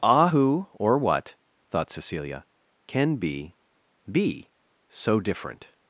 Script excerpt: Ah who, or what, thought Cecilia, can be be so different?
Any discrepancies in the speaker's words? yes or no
no